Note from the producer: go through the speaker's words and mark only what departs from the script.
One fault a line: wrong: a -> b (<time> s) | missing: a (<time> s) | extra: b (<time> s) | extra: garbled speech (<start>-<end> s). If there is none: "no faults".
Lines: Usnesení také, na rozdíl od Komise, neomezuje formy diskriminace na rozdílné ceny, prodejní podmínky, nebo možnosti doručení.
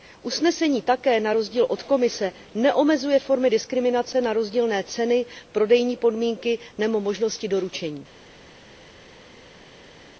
no faults